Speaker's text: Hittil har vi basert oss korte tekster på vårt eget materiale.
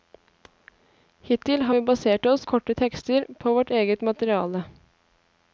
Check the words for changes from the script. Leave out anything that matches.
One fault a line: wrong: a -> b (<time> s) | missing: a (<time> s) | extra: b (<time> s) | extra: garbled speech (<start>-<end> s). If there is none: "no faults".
no faults